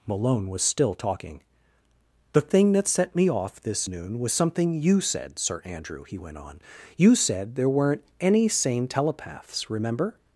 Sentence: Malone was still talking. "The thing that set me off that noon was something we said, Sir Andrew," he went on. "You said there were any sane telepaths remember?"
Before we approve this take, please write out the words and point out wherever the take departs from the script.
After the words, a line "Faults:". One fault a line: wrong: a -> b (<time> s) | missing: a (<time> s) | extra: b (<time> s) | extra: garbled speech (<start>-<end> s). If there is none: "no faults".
Malone was still talking. "The thing that set me off this noon was something you said, Sir Andrew," he went on. "You said there weren't any sane telepaths remember?"
Faults:
wrong: that -> this (3.6 s)
wrong: we -> you (4.8 s)
wrong: were -> weren't (7.7 s)